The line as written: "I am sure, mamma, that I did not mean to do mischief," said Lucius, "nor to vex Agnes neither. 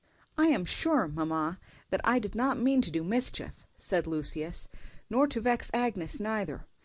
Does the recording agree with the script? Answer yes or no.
yes